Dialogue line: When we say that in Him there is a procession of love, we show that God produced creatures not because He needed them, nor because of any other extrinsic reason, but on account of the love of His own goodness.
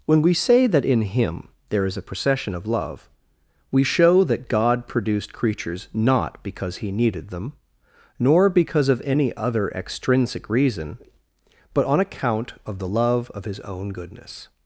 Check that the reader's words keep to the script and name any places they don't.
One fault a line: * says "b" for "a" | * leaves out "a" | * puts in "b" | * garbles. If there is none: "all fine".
all fine